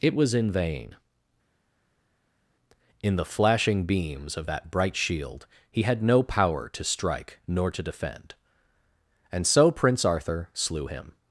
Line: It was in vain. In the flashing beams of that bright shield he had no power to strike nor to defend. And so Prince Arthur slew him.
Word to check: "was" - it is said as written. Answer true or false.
true